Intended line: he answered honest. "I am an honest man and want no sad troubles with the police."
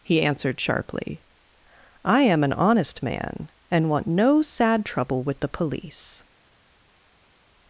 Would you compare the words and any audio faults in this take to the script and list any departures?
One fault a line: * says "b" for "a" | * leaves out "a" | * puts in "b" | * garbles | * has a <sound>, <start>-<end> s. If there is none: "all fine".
* says "sharply" for "honest"
* says "trouble" for "troubles"